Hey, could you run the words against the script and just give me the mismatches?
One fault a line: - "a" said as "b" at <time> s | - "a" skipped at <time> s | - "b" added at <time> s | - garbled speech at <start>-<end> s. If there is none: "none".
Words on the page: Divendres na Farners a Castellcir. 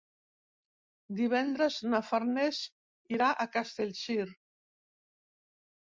- "irà" added at 3.2 s